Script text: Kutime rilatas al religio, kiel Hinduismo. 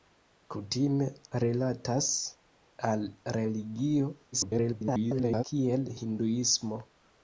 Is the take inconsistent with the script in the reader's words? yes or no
yes